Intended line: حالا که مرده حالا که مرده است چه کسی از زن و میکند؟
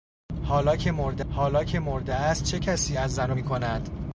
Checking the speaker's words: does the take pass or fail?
pass